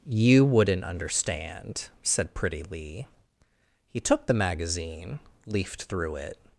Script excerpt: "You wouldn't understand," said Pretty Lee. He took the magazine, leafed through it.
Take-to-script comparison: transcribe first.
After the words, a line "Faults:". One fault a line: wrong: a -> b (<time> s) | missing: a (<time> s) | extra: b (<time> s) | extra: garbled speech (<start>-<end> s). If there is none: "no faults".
"You wouldn't understand," said Pretty Lee. He took the magazine, leafed through it.
Faults:
no faults